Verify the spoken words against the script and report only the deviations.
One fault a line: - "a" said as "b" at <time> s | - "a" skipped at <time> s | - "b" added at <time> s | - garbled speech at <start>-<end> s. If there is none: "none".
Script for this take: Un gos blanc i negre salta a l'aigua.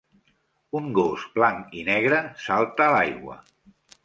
none